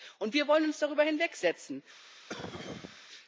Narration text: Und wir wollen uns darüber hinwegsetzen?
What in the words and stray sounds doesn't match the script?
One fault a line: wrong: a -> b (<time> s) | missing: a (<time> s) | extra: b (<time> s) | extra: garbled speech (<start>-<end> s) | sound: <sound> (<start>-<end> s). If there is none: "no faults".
sound: cough (2.3-3.1 s)